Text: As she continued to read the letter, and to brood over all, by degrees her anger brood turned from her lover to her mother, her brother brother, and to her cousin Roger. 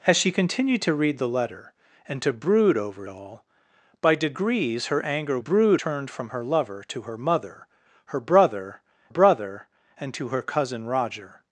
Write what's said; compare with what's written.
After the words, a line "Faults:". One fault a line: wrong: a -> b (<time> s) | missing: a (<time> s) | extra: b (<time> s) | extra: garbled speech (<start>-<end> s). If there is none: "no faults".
As she continued to read the letter, and to brood over all, by degrees her anger brood turned from her lover to her mother, her brother brother, and to her cousin Roger.
Faults:
no faults